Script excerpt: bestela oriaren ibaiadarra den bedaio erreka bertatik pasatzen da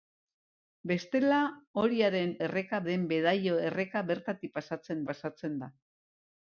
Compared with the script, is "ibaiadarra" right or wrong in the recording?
wrong